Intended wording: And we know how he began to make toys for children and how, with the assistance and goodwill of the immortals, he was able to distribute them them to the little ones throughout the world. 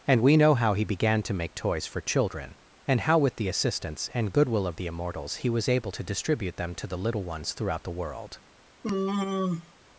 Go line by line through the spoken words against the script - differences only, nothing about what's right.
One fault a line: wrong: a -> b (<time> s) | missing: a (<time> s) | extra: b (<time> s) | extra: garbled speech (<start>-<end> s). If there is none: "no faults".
missing: them (6.8 s)